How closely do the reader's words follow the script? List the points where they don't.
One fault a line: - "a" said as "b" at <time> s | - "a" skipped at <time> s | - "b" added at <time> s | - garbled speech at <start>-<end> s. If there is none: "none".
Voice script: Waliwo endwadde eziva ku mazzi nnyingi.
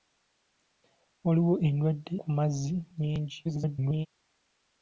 - "eziva" skipped at 2.1 s
- garbled speech at 3.4-4.1 s